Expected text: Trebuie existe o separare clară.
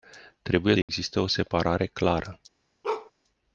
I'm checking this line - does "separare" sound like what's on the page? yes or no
yes